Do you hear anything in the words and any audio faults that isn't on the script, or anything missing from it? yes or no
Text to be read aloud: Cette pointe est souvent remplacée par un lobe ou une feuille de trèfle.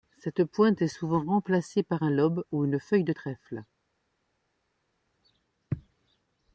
no